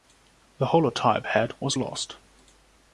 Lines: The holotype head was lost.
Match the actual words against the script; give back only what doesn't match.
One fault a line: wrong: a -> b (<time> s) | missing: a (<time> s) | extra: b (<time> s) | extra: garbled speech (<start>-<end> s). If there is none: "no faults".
no faults